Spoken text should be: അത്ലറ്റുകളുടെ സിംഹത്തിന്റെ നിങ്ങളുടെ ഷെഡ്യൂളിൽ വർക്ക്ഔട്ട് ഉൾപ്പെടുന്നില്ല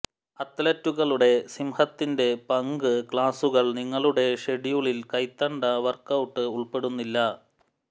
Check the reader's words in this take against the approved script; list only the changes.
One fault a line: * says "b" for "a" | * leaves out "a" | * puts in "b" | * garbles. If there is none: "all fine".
* puts in "പങ്ക് ക്ലാസുകൾ"
* puts in "കൈത്തണ്ട"